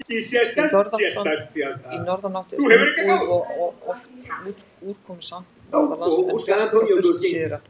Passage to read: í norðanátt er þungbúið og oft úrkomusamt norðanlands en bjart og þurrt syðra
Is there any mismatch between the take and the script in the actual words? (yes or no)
no